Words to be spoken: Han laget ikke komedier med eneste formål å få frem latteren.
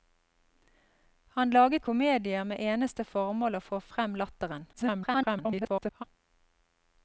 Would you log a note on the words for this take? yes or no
yes